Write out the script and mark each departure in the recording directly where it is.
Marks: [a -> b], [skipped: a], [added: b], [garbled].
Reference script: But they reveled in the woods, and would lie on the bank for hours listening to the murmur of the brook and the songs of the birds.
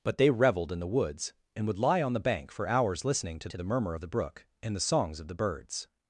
But they reveled in the woods, and would lie on the bank for hours listening to [added: to] the murmur of the brook and the songs of the birds.